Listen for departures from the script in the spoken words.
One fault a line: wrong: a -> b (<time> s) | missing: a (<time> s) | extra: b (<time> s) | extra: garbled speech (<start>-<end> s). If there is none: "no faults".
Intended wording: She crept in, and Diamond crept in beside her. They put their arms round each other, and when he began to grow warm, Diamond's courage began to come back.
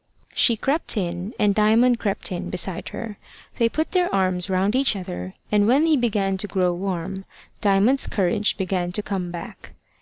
no faults